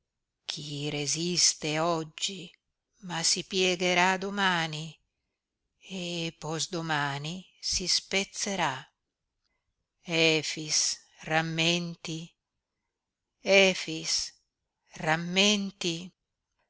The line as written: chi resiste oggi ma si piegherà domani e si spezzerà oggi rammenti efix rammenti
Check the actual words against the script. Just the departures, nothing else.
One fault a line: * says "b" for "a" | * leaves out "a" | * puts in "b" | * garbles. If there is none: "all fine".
* puts in "posdomani"
* says "efix" for "oggi"